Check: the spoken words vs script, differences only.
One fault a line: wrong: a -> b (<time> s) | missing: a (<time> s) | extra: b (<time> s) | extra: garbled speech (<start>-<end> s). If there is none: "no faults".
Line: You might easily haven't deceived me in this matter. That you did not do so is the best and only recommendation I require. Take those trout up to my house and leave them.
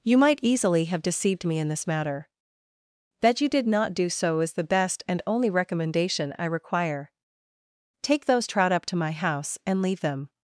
wrong: haven't -> have (0.8 s)